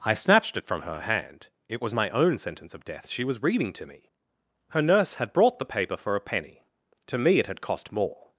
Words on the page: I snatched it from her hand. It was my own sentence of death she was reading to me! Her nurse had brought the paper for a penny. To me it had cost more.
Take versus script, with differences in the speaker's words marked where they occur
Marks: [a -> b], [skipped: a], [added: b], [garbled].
I snatched it from her hand. It was my own sentence of death she was reading to me! Her nurse had brought the paper for a penny. To me it had cost more.